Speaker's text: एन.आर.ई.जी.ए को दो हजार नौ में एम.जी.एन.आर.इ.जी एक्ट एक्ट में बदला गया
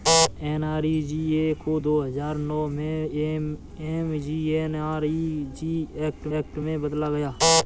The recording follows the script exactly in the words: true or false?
true